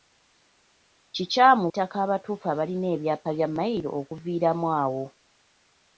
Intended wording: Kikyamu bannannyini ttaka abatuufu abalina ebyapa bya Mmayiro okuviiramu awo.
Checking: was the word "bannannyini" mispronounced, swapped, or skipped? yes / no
yes